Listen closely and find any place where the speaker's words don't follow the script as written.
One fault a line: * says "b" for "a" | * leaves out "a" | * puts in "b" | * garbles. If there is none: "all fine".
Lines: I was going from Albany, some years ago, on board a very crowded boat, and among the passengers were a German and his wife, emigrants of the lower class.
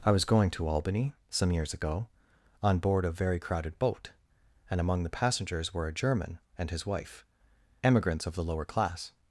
* says "to" for "from"